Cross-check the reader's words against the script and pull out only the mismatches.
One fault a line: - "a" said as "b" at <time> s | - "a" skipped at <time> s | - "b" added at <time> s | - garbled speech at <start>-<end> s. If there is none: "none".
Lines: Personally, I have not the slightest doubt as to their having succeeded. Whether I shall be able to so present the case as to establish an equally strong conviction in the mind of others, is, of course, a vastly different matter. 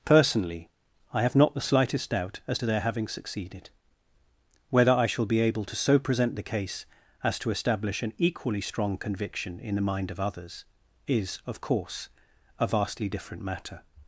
none